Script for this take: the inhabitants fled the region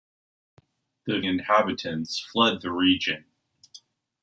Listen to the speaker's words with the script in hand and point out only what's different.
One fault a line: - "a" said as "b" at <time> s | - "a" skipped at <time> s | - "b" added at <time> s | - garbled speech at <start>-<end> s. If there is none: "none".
none